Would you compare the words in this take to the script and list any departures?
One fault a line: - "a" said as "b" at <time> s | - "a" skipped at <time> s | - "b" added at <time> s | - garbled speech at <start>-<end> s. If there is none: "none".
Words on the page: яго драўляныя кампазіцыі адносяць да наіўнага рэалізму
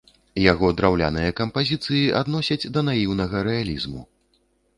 none